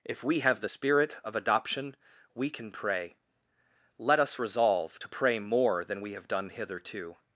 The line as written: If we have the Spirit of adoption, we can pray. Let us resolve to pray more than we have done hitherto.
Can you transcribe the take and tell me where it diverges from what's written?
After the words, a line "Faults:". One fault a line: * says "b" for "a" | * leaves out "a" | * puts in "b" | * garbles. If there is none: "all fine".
If we have the Spirit of adoption, we can pray. Let us resolve to pray more than we have done hitherto.
Faults:
all fine